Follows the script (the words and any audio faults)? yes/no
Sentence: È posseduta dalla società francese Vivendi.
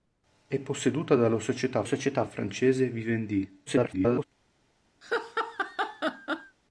no